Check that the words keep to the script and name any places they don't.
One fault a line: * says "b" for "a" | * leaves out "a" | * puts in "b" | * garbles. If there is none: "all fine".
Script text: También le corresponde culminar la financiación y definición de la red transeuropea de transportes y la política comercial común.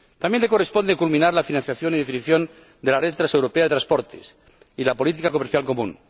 all fine